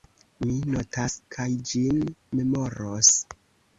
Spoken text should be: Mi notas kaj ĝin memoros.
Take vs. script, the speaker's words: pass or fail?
pass